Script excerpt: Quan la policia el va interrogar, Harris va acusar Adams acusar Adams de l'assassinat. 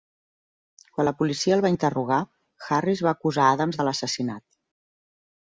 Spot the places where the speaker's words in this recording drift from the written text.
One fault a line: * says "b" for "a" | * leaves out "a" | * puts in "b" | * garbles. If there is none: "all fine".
* leaves out "acusar Adams"